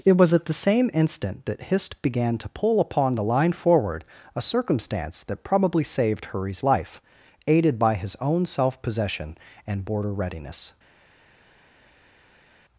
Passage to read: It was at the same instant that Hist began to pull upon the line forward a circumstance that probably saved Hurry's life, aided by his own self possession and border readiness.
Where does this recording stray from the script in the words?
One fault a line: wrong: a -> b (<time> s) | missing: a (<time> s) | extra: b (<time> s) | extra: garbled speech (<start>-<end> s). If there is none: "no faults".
no faults